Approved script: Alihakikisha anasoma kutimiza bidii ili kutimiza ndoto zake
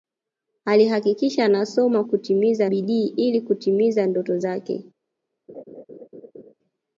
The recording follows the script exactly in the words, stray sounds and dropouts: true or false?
false